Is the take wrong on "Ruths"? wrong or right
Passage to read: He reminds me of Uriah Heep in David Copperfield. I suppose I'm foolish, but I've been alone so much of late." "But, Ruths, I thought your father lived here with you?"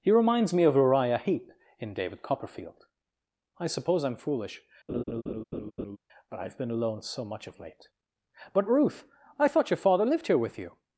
wrong